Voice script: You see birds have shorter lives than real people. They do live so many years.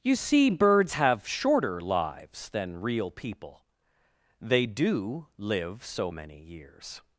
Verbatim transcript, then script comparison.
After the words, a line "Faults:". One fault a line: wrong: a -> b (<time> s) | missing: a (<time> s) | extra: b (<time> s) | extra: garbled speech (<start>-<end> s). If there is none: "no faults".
You see birds have shorter lives than real people. They do live so many years.
Faults:
no faults